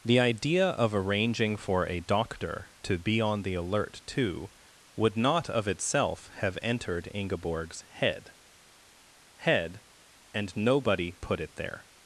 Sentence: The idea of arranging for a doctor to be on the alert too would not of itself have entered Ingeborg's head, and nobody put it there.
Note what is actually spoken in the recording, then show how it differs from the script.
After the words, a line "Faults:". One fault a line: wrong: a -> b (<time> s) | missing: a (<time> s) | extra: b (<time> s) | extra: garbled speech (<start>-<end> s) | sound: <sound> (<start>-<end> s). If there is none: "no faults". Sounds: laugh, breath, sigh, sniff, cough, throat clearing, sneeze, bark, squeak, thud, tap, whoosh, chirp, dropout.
The idea of arranging for a doctor to be on the alert too would not of itself have entered Ingeborg's head head, and nobody put it there.
Faults:
extra: head (9.3 s)